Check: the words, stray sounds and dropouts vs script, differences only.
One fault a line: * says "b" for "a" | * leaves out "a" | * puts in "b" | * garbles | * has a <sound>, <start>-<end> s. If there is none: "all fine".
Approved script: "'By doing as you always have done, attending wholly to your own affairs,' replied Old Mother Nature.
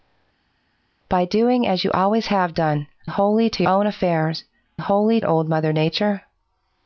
* leaves out "attending"
* leaves out "your"
* says "wholly" for "replied"